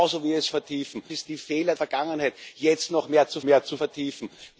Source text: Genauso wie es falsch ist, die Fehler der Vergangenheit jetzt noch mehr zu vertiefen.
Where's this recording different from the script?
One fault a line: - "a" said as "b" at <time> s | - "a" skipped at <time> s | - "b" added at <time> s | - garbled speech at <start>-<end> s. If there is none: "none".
- "falsch" said as "vertiefen" at 0.5 s
- "der" skipped at 1.8 s
- "mehr zu" added at 3.4 s